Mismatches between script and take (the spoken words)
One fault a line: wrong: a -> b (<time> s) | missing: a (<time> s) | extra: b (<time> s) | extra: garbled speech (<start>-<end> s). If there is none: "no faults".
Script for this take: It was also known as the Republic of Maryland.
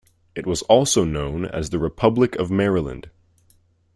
no faults